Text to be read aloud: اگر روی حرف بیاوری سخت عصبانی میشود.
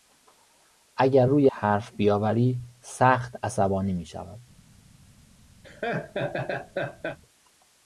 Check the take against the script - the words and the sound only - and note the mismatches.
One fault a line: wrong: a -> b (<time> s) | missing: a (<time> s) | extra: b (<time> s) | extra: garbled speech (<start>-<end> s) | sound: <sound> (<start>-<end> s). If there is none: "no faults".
sound: laugh (5.6-7.2 s)